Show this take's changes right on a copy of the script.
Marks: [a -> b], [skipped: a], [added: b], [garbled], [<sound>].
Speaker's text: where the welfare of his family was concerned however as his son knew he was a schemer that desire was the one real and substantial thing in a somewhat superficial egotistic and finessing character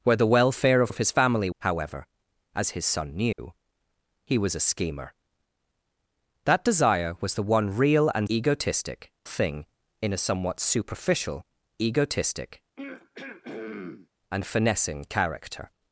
where the welfare of [added: of] his family [skipped: was concerned] however as his son knew [dropout] he was a schemer that desire was the one real and [substantial -> egotistic] thing in a somewhat superficial egotistic [throat clearing] and finessing character